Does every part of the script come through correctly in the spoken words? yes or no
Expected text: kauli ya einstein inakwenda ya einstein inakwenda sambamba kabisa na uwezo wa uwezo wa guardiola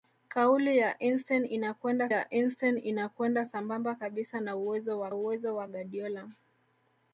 yes